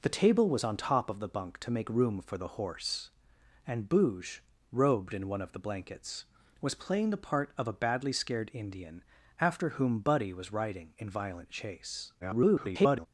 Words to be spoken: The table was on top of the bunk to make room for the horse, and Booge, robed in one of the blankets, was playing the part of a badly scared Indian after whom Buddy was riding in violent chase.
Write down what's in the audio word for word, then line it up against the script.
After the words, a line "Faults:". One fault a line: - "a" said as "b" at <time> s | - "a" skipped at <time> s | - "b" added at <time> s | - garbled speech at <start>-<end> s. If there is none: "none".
The table was on top of the bunk to make room for the horse, and Booge, robed in one of the blankets, was playing the part of a badly scared Indian after whom Buddy was riding in violent chase. [garbled]
Faults:
- garbled speech at 12.2-13.1 s